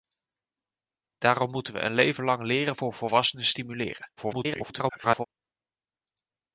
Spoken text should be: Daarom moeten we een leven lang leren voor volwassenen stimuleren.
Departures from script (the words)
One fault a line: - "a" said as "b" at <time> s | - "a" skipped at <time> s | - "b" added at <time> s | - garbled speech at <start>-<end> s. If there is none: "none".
- garbled speech at 4.2-5.3 s